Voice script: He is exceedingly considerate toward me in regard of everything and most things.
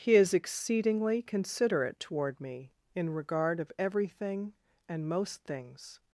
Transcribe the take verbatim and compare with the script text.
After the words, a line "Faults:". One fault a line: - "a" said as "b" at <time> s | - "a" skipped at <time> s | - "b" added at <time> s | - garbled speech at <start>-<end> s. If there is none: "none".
He is exceedingly considerate toward me in regard of everything and most things.
Faults:
none